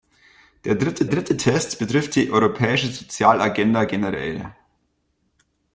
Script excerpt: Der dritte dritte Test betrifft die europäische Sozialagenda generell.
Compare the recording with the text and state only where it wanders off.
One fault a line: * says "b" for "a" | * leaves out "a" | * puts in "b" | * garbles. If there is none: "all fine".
all fine